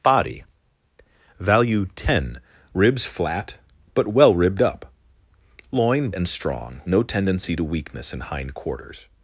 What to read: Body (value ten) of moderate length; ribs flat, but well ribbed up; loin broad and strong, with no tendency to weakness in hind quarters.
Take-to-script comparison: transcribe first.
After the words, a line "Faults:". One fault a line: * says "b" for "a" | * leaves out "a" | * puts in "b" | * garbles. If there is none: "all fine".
Body (value ten; ribs flat, but well ribbed up; loin and strong, no tendency to weakness in hind quarters.
Faults:
* leaves out "of moderate length"
* leaves out "broad"
* leaves out "with"